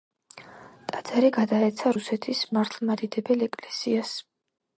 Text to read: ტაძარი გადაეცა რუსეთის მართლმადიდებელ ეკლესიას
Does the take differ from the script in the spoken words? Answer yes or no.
no